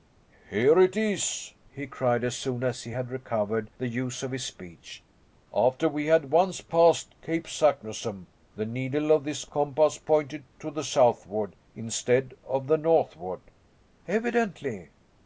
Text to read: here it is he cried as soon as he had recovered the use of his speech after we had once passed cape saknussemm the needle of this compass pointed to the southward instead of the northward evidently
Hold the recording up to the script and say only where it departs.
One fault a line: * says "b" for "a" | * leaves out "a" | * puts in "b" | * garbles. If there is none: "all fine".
all fine